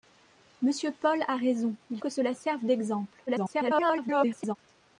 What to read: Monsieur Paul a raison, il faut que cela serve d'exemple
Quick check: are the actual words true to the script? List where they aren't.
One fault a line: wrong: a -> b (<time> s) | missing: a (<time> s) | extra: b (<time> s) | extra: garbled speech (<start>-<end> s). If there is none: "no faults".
missing: faut (2.0 s)
extra: garbled speech (3.3-4.6 s)